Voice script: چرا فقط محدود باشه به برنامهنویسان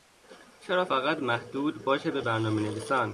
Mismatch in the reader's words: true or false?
false